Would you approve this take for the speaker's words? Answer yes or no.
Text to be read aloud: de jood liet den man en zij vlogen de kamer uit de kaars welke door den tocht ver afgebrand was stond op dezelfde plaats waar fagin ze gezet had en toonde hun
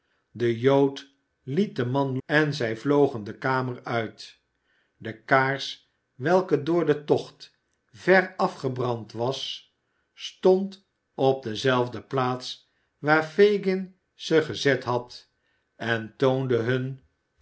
yes